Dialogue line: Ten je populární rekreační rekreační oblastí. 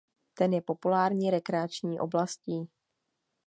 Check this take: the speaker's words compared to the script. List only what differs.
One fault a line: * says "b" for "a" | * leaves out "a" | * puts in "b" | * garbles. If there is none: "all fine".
* leaves out "rekreační"